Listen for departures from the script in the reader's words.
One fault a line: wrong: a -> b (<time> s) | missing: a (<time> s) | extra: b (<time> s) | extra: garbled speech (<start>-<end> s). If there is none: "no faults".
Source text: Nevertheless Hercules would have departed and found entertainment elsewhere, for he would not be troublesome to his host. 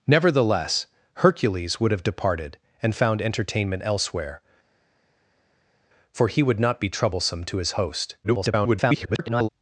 extra: garbled speech (8.2-9.5 s)